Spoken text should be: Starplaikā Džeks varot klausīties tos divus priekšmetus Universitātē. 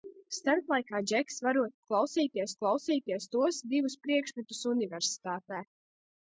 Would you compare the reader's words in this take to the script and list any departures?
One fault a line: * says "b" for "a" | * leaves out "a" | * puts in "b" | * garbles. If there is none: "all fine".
* puts in "klausīties"